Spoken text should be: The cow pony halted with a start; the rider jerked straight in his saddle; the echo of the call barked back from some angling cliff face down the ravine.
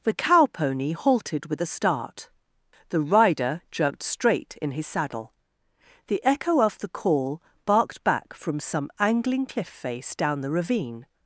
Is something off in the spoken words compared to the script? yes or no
no